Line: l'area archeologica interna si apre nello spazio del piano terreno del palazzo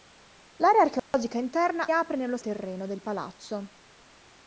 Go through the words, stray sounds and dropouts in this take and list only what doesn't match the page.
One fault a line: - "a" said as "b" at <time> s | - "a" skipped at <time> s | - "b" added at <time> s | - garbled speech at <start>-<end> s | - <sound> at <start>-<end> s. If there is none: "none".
- dropout at 1.0-1.1 s
- "si" skipped at 1.9 s
- "spazio del piano" skipped at 2.4 s